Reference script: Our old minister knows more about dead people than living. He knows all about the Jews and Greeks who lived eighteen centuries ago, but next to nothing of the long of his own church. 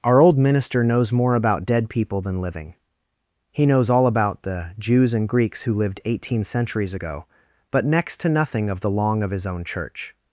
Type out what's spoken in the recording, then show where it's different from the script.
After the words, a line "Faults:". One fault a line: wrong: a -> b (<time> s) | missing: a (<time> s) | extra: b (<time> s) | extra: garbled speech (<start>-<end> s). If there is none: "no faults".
Our old minister knows more about dead people than living. He knows all about the Jews and Greeks who lived eighteen centuries ago, but next to nothing of the long of his own church.
Faults:
no faults